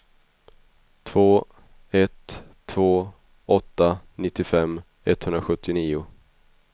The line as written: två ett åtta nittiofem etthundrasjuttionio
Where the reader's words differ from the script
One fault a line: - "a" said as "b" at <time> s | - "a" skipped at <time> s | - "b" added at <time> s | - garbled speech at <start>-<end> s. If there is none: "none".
- "två" added at 2.6 s